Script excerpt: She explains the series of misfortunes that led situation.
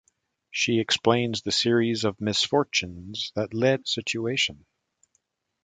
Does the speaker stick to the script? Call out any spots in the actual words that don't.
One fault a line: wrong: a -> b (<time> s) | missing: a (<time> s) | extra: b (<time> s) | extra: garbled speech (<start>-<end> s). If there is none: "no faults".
no faults